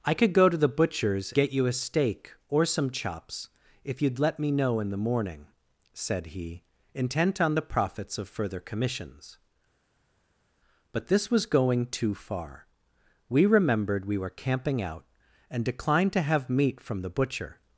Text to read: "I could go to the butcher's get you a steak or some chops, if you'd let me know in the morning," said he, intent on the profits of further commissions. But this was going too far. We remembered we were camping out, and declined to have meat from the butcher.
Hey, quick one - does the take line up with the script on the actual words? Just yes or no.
yes